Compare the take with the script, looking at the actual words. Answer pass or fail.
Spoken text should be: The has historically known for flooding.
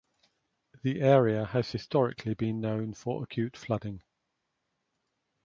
fail